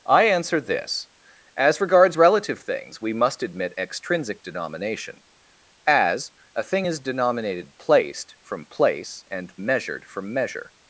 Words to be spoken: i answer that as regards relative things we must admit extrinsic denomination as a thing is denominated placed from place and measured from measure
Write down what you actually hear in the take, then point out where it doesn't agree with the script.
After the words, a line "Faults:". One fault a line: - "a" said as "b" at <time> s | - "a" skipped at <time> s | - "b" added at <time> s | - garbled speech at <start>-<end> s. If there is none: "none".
i answer this as regards relative things we must admit extrinsic denomination as a thing is denominated placed from place and measured from measure
Faults:
- "that" said as "this" at 0.6 s